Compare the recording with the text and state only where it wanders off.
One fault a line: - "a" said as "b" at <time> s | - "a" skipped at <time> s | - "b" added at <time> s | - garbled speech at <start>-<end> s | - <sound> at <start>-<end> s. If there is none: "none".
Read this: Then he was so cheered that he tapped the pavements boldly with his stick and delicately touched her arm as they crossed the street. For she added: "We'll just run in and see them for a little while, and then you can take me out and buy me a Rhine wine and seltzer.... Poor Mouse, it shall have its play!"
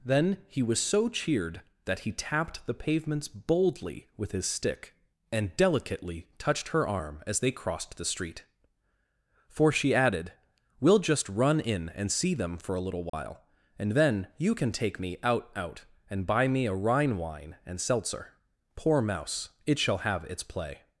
- dropout at 13.1-13.1 s
- "out" added at 15.6 s